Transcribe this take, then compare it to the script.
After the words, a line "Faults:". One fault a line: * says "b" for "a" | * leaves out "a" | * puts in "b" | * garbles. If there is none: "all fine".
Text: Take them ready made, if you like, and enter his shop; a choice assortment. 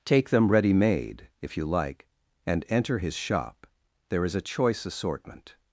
Take them ready made, if you like, and enter his shop; there is a choice assortment.
Faults:
* puts in "there is"